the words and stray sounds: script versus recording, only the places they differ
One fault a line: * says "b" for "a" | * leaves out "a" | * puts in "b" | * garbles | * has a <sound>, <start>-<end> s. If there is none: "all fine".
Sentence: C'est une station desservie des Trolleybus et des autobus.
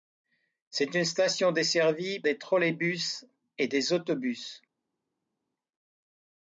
all fine